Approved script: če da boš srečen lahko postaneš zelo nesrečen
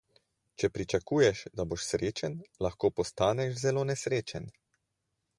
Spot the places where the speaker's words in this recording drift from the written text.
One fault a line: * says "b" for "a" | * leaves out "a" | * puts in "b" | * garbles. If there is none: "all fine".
* puts in "pričakuješ"